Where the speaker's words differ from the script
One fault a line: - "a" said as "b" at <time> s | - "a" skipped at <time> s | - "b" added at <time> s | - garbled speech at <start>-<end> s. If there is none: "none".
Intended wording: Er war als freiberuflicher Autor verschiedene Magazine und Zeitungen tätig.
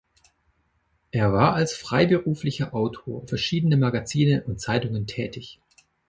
none